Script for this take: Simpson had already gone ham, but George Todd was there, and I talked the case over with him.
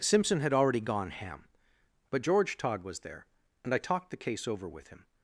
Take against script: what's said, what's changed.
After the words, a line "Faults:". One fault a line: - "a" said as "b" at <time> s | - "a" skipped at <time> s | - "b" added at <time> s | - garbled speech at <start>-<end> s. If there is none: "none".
Simpson had already gone ham, but George Todd was there, and I talked the case over with him.
Faults:
none